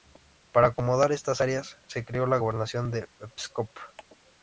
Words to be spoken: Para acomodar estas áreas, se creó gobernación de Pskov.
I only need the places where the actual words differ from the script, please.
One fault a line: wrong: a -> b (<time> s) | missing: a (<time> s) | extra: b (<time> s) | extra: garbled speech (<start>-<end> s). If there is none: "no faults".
extra: la (2.3 s)